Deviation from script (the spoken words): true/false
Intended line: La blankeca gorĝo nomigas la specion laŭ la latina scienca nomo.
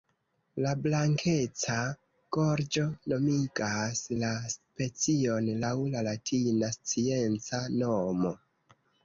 false